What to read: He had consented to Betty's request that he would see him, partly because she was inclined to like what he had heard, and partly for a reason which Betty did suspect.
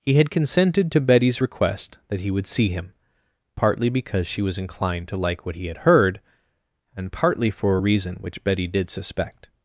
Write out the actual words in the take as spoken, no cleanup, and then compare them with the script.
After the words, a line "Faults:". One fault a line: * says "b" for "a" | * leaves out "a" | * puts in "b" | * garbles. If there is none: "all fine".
He had consented to Betty's request that he would see him, partly because she was inclined to like what he had heard, and partly for a reason which Betty did suspect.
Faults:
all fine